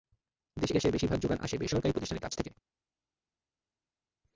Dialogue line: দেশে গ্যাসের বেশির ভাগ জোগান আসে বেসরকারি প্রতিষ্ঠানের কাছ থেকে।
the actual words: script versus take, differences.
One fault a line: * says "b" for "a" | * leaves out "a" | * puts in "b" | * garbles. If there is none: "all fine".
all fine